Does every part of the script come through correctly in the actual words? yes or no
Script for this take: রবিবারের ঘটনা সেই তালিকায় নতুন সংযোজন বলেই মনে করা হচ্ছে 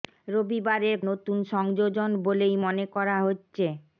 no